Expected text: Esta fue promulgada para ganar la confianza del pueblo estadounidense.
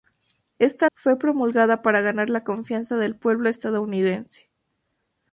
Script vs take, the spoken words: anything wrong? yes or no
no